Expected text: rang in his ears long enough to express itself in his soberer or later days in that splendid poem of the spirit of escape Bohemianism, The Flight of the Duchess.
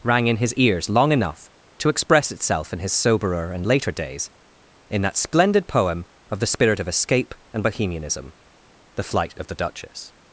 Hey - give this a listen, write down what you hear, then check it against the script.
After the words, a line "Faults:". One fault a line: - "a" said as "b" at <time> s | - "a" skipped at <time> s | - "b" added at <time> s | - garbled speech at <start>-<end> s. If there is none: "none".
rang in his ears long enough to express itself in his soberer and later days in that splendid poem of the spirit of escape and Bohemianism, The Flight of the Duchess.
Faults:
- "or" said as "and" at 3.5 s
- "and" added at 7.5 s